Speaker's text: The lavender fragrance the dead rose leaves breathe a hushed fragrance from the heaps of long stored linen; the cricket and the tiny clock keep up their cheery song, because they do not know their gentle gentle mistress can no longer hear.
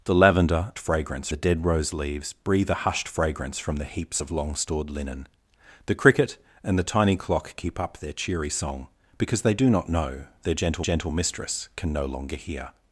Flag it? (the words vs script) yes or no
no